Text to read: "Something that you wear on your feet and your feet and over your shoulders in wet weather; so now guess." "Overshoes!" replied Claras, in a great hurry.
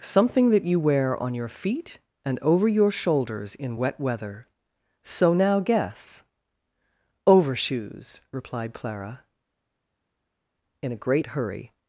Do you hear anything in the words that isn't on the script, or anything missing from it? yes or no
yes